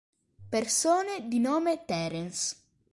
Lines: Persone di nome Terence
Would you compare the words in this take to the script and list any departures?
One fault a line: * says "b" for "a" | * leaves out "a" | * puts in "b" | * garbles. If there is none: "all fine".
all fine